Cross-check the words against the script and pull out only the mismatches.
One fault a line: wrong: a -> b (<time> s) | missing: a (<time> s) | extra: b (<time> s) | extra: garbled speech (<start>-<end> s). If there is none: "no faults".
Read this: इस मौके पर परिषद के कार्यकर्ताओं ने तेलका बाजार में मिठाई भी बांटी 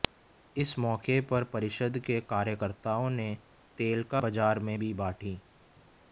missing: मिठाई (4.8 s)